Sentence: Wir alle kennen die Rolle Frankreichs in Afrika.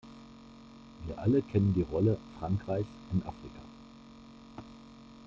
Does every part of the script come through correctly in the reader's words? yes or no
yes